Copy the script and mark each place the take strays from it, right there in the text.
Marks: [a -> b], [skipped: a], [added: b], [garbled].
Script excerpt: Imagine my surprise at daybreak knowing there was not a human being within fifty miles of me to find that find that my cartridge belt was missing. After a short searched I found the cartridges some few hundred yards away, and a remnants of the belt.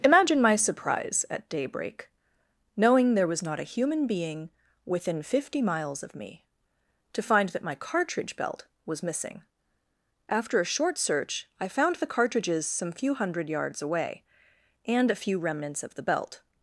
Imagine my surprise at daybreak knowing there was not a human being within fifty miles of me to find that [skipped: find that] my cartridge belt was missing. After a short [searched -> search] I found the cartridges some few hundred yards away, and a [added: few] remnants of the belt.